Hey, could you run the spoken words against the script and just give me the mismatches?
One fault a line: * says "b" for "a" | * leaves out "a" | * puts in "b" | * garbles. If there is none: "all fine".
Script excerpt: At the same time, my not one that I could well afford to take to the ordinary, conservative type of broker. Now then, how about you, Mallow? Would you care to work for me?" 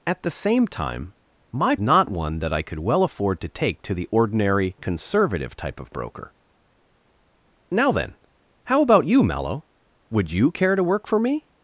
all fine